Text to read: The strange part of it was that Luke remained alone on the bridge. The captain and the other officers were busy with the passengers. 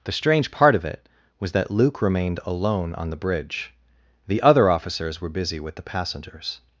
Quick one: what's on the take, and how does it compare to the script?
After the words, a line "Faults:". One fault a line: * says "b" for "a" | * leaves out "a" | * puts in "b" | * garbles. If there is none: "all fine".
The strange part of it was that Luke remained alone on the bridge. The other officers were busy with the passengers.
Faults:
* leaves out "captain and the"